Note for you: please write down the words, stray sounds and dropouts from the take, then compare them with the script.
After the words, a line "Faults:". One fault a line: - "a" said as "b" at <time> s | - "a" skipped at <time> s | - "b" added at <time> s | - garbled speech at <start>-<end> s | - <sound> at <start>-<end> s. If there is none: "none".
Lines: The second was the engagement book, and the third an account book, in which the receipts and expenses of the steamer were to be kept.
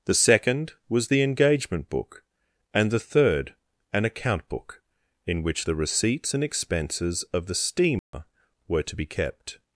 The second was the engagement book, and the third an account book, in which the receipts and expenses of the steamer were to be kept.
Faults:
- dropout at 8.0-8.1 s